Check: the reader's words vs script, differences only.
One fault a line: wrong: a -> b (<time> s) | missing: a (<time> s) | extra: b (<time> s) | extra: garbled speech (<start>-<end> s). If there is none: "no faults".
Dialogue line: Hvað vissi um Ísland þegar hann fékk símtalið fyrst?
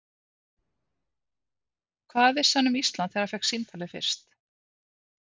extra: hann (2.6 s)